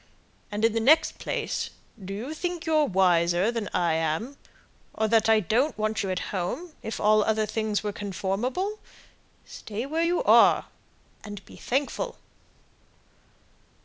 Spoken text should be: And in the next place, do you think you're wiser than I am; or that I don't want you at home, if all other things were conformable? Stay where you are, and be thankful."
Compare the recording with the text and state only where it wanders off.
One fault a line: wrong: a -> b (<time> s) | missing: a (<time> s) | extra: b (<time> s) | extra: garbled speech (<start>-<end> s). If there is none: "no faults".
no faults